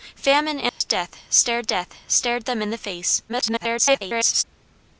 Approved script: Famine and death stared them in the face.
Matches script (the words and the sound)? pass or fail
fail